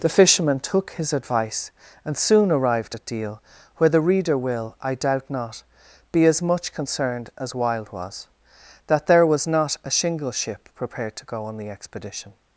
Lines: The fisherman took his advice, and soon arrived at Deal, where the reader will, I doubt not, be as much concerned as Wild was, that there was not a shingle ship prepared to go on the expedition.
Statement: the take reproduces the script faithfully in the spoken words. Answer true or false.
true